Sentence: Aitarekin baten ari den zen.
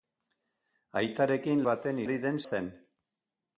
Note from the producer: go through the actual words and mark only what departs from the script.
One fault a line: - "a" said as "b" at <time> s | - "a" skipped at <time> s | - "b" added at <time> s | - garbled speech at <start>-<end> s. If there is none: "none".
none